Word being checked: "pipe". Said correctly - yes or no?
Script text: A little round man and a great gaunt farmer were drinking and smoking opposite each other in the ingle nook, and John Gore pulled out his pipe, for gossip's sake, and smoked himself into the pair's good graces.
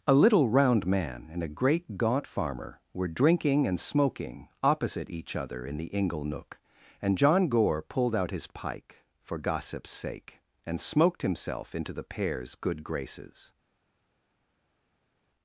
no